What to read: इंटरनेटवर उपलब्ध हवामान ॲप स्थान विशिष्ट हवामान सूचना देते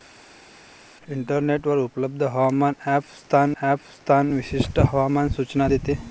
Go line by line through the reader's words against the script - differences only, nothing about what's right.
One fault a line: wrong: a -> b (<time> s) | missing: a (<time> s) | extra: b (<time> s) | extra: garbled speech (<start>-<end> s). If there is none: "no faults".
extra: ॲप स्थान (3.6 s)